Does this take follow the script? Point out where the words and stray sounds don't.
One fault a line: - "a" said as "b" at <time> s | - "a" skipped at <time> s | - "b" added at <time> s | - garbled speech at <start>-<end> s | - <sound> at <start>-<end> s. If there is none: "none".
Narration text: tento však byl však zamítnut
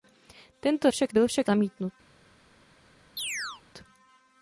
- chirp at 3.2-3.6 s